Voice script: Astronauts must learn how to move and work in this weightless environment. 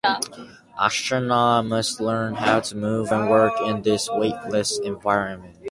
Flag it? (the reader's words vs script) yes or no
no